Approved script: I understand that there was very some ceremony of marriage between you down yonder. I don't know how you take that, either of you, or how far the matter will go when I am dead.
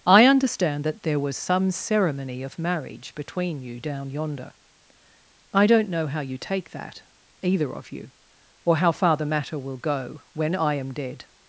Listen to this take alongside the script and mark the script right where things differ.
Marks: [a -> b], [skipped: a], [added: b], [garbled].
I understand that there was [skipped: very] some ceremony of marriage between you down yonder. I don't know how you take that, either of you, or how far the matter will go when I am dead.